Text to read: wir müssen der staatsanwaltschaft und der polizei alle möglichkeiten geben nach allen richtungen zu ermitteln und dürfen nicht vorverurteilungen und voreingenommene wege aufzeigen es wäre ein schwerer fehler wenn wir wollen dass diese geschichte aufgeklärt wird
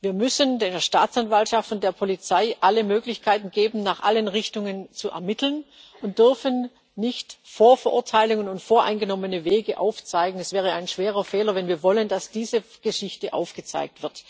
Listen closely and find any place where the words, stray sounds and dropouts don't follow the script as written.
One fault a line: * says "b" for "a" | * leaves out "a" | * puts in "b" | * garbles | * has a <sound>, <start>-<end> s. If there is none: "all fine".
all fine